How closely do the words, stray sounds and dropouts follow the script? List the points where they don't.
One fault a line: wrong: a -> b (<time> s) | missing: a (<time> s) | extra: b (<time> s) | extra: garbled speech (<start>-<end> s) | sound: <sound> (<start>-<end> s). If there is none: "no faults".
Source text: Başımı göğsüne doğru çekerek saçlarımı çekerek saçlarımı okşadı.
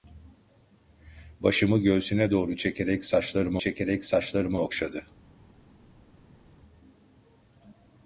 no faults